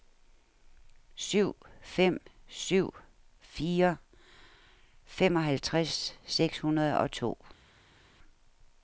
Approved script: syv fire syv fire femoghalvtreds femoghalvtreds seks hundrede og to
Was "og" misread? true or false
false